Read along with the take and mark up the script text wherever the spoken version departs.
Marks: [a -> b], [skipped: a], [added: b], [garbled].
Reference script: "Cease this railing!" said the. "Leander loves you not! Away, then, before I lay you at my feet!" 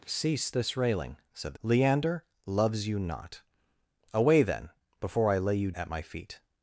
"Cease this railing!" said the. "Leander loves you not! Away, then, before I lay you at my feet!"